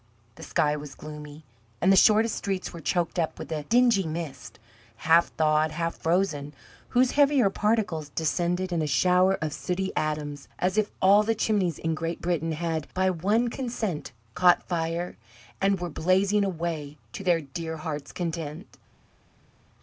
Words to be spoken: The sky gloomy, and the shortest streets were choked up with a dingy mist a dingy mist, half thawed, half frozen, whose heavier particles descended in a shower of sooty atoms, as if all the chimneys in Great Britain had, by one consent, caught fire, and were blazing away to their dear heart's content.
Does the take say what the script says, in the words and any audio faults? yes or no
no